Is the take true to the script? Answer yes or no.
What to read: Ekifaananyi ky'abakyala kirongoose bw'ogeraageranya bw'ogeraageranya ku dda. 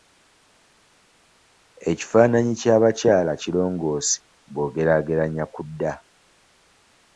no